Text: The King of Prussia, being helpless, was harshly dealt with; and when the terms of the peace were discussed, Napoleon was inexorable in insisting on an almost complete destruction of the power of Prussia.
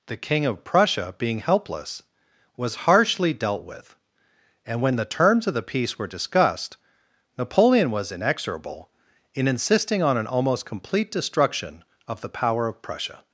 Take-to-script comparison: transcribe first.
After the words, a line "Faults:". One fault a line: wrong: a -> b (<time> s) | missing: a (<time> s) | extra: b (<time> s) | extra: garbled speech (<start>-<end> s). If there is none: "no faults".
The King of Prussia, being helpless, was harshly dealt with; and when the terms of the peace were discussed, Napoleon was inexorable in insisting on an almost complete destruction of the power of Prussia.
Faults:
no faults